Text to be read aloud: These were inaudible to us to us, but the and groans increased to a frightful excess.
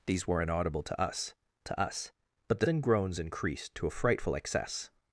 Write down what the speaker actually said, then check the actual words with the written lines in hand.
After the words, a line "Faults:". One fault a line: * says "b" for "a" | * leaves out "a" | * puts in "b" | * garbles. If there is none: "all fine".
These were inaudible to us to us, but the and groans increased to a frightful excess.
Faults:
all fine